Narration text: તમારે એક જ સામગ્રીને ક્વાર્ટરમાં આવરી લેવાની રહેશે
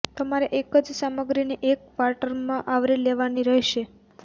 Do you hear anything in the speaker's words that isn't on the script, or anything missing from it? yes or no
yes